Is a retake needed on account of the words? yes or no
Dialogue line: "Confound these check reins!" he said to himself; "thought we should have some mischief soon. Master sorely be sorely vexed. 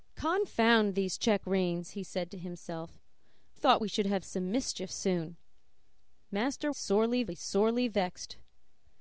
no